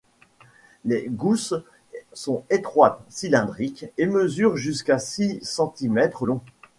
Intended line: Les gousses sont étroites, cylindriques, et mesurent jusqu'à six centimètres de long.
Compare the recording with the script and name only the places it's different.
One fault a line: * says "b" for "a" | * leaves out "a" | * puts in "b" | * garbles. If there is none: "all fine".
* leaves out "de"